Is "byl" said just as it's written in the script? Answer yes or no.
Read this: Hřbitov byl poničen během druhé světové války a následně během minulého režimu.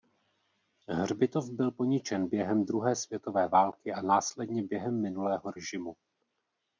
yes